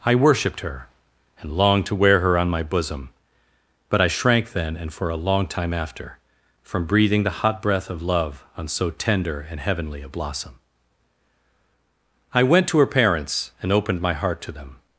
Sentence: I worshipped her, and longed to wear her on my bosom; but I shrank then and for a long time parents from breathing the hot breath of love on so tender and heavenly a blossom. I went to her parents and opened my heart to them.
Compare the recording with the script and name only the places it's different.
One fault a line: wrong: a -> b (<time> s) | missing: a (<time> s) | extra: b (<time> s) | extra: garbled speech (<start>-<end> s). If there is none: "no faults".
wrong: parents -> after (5.7 s)